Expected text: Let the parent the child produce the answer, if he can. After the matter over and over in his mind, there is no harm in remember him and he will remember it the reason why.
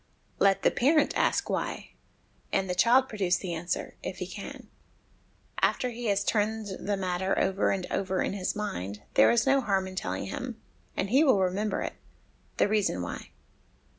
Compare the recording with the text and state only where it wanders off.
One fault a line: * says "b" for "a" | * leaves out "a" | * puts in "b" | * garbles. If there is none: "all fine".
* puts in "ask Why and"
* puts in "he has turned"
* says "telling" for "remember"